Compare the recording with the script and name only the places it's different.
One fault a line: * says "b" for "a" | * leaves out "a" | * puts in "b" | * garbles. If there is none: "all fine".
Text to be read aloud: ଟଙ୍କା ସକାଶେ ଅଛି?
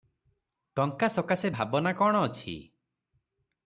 * puts in "ଭାବନା କଣ"